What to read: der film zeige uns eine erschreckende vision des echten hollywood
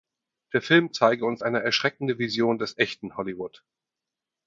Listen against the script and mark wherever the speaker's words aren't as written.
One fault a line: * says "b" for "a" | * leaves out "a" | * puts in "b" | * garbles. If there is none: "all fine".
all fine